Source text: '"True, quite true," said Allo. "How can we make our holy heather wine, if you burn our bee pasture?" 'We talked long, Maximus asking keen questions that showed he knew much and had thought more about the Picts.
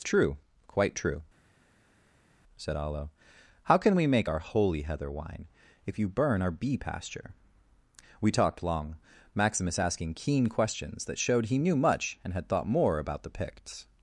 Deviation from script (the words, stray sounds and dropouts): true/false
false